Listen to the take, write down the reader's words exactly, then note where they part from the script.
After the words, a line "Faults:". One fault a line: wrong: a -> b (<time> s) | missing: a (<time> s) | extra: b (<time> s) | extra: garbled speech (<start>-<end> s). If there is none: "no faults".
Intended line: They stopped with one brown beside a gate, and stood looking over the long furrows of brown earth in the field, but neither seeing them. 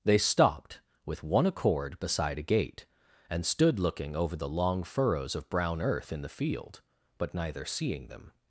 They stopped with one accord beside a gate, and stood looking over the long furrows of brown earth in the field, but neither seeing them.
Faults:
wrong: brown -> accord (1.4 s)